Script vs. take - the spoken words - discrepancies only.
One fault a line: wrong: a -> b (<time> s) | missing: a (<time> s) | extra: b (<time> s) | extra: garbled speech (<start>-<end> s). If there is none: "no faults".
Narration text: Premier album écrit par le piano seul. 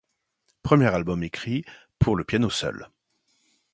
wrong: par -> pour (2.0 s)